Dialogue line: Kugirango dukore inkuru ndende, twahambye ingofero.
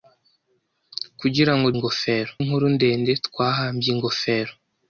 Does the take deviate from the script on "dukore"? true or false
true